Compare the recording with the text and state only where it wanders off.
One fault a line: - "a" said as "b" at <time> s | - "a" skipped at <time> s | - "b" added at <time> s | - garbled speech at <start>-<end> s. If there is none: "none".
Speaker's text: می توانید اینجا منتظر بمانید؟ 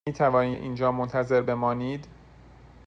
none